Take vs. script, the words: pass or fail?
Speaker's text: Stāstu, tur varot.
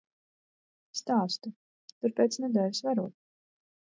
fail